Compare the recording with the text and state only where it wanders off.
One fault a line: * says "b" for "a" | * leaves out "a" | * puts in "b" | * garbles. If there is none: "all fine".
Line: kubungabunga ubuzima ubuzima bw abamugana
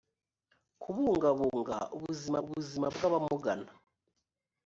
all fine